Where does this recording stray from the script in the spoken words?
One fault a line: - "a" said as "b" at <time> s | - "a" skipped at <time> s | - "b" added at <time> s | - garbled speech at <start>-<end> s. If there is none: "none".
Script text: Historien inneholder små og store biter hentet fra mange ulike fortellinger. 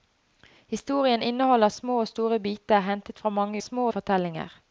- "ulike" said as "små" at 3.6 s